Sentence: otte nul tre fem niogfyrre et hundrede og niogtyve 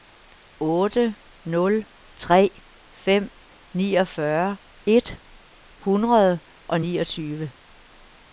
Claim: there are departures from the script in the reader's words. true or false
false